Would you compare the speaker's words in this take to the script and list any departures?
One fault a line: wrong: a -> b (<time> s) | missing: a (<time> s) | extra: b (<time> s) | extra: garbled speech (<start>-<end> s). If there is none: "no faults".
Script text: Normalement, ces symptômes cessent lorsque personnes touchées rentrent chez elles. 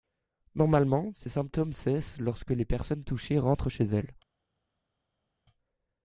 extra: les (2.5 s)